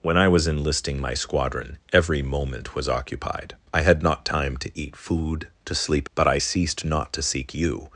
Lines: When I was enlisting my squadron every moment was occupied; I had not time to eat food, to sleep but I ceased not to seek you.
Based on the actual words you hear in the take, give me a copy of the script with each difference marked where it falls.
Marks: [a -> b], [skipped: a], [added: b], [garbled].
When I was enlisting my squadron every moment was occupied; I had not time to eat food, to sleep but I ceased not to seek you.